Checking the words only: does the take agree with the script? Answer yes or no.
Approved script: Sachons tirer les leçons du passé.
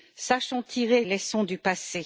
no